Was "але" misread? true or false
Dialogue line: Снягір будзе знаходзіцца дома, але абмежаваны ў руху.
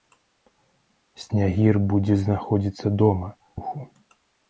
true